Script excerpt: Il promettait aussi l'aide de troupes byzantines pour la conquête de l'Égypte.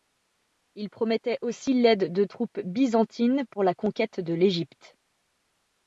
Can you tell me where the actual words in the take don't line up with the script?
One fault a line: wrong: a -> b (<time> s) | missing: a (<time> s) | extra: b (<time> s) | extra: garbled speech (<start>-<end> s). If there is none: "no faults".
no faults